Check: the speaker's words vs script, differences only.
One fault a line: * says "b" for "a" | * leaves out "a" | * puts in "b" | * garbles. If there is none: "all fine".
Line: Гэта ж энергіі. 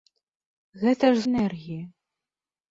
all fine